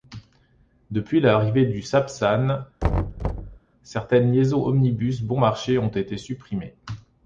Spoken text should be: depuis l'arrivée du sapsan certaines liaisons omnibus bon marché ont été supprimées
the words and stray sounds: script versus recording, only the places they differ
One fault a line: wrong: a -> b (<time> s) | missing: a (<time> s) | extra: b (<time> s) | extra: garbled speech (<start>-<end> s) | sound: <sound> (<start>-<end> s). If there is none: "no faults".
sound: thud (2.8-3.6 s)